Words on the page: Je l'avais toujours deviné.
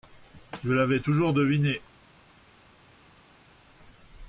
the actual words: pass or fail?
pass